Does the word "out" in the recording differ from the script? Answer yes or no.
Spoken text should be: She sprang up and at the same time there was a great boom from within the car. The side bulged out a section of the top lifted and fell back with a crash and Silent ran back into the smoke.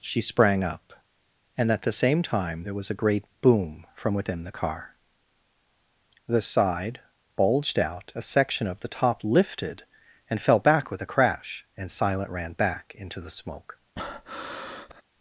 no